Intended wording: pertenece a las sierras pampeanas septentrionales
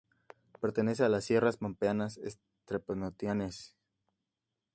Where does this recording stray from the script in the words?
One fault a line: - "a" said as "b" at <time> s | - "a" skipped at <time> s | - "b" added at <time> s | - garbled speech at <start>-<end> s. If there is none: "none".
none